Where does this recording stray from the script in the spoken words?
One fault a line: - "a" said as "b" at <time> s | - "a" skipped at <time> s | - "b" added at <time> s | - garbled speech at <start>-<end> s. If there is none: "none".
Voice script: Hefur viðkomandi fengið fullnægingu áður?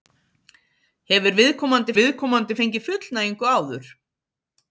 - "viðkomandi" added at 2.0 s